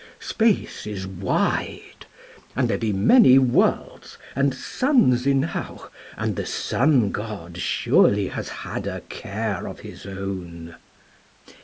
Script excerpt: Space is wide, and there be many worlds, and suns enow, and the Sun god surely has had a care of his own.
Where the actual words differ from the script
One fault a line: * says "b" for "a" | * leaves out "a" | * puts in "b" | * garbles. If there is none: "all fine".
all fine